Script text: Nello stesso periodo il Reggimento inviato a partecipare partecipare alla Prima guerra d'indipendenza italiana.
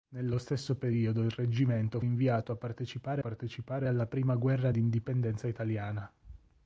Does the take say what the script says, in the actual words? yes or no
yes